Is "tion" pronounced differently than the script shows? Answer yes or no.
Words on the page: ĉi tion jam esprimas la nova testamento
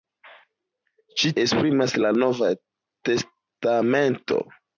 yes